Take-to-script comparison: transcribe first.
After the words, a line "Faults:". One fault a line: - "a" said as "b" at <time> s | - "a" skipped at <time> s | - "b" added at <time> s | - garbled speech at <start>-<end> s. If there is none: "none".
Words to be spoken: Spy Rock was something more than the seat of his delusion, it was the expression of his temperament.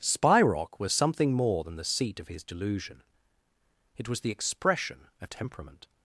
Spy Rock was something more than the seat of his delusion, it was the expression of temperament.
Faults:
- "his" skipped at 5.3 s